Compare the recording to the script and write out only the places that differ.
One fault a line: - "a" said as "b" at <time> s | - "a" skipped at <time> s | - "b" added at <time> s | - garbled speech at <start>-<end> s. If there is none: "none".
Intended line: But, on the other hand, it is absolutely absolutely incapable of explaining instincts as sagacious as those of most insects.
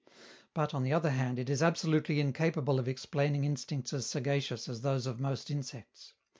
- "absolutely" skipped at 2.2 s